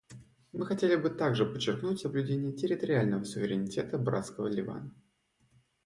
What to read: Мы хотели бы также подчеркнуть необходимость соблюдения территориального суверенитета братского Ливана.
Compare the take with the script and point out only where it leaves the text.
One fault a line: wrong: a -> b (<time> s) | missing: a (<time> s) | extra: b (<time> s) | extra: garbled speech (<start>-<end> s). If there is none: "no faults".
missing: необходимость (2.0 s)